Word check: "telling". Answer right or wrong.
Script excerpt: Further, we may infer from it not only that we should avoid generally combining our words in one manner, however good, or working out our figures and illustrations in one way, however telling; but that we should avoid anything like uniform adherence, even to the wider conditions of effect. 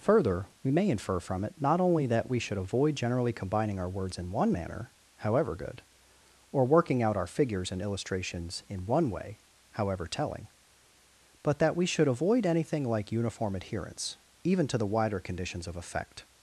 right